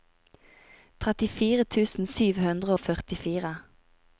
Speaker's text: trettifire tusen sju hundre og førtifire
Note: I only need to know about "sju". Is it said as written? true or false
true